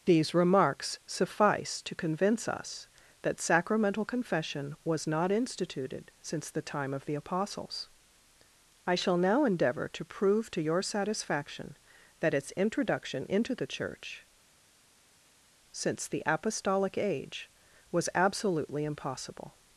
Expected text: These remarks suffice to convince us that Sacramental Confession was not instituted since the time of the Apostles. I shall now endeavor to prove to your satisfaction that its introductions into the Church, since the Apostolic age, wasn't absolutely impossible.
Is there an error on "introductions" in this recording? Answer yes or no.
yes